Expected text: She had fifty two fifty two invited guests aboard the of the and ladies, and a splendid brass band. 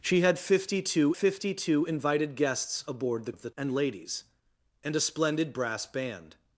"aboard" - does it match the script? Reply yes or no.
yes